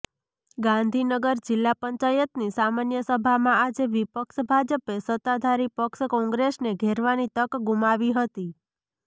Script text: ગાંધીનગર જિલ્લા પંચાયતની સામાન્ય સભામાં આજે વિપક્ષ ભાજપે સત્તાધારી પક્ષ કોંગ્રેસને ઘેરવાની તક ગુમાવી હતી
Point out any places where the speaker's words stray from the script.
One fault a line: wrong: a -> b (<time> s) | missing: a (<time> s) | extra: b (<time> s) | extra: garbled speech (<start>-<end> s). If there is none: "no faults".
no faults